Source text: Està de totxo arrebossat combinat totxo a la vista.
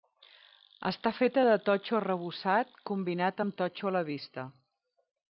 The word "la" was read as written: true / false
true